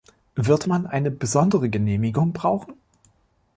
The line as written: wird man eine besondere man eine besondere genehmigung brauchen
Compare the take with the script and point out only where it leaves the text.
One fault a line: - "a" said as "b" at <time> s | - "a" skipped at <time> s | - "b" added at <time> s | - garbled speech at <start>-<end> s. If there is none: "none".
- "man eine besondere" skipped at 1.7 s